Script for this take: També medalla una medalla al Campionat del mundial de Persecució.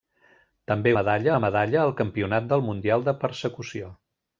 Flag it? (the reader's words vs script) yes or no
no